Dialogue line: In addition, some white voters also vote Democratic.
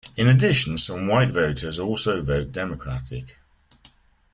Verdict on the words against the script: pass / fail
pass